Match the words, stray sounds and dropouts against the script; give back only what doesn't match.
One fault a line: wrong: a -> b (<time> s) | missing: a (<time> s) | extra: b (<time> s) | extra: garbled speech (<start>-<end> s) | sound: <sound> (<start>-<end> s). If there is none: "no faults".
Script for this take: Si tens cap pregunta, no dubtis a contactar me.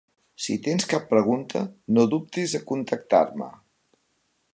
no faults